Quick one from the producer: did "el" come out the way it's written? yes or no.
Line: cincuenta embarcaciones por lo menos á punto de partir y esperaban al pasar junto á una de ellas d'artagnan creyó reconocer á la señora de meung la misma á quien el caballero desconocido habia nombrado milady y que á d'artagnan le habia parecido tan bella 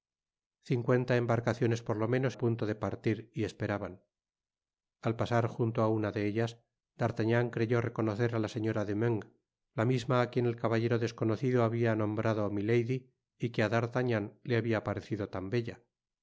yes